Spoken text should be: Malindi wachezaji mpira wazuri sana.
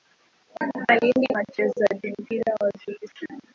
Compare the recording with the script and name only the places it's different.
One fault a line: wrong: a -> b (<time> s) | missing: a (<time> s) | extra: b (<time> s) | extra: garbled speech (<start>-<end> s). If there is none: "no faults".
no faults